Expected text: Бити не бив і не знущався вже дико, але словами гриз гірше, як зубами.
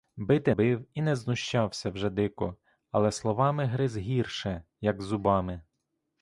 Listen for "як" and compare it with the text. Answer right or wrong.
right